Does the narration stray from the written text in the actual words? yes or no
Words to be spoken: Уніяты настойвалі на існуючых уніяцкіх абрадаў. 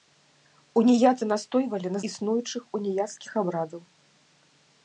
no